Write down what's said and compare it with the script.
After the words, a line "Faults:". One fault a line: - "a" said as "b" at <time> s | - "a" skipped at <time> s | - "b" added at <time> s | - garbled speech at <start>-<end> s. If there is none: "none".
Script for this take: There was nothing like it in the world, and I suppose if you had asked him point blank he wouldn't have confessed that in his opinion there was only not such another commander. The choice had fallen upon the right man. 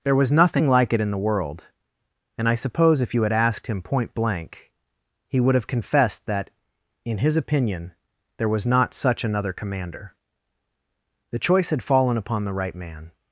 There was nothing like it in the world, and I suppose if you had asked him point blank he would have confessed that in his opinion there was not such another commander. The choice had fallen upon the right man.
Faults:
- "wouldn't" said as "would" at 5.4 s
- "only" skipped at 8.7 s